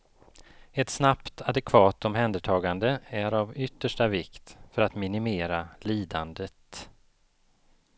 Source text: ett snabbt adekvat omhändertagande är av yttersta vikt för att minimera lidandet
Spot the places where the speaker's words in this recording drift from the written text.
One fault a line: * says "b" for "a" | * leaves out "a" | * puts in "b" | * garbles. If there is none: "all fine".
all fine